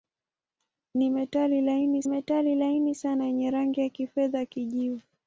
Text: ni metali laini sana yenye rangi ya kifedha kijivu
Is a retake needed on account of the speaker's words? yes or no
yes